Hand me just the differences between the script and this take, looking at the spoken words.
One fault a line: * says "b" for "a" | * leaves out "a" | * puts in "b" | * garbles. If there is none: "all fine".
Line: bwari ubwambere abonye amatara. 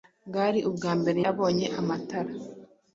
all fine